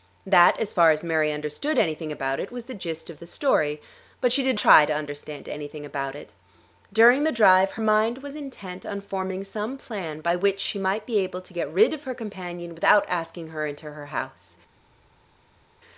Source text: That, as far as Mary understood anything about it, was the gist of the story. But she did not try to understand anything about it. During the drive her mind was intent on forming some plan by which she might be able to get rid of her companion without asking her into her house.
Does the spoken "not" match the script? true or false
false